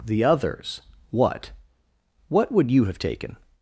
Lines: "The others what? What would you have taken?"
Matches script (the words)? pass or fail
pass